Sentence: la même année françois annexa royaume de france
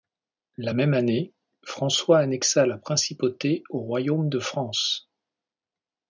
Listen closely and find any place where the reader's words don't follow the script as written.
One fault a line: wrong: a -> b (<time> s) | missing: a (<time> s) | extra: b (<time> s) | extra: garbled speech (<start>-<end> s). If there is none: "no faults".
extra: la principauté au (2.7 s)